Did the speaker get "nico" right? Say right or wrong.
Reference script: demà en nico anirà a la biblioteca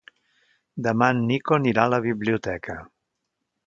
right